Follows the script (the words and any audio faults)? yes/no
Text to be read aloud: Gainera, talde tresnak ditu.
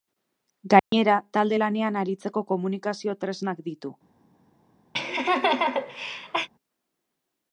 no